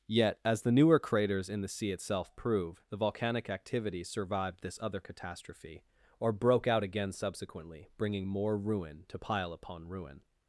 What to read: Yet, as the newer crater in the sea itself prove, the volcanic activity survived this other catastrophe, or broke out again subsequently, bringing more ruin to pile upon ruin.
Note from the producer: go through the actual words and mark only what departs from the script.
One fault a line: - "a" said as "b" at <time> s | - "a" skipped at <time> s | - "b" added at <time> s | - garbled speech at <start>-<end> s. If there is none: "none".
- "crater" said as "craters" at 1.0 s